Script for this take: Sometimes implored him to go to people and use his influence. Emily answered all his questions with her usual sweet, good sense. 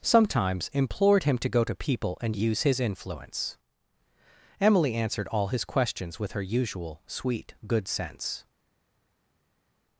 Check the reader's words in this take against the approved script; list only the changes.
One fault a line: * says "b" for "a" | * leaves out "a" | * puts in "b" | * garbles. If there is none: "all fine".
all fine